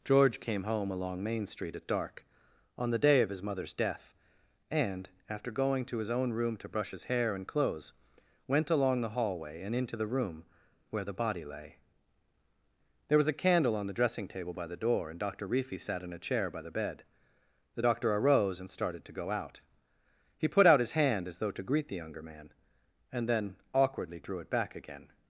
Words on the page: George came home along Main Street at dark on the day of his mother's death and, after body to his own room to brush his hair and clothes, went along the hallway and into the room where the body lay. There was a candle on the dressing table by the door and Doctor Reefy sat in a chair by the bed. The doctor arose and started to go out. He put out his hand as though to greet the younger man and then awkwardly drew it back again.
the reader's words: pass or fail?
fail